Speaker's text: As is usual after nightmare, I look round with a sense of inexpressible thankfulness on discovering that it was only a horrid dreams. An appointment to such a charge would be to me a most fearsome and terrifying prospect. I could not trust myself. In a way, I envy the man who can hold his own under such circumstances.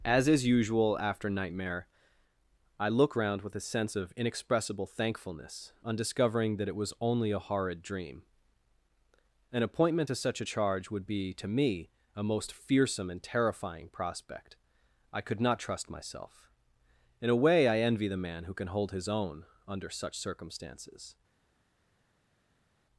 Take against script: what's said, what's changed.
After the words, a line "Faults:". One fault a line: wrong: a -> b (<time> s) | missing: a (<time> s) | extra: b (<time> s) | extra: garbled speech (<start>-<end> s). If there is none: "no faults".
As is usual after nightmare, I look round with a sense of inexpressible thankfulness on discovering that it was only a horrid dream. An appointment to such a charge would be to me a most fearsome and terrifying prospect. I could not trust myself. In a way, I envy the man who can hold his own under such circumstances.
Faults:
wrong: dreams -> dream (7.8 s)